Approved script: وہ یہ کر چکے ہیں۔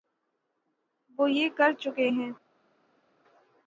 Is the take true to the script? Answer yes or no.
yes